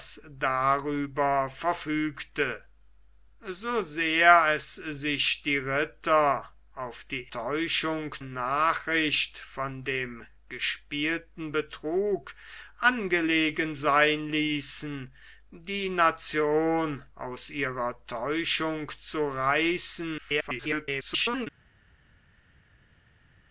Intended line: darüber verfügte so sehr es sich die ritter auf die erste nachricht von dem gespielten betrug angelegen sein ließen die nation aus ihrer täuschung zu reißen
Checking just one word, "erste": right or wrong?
wrong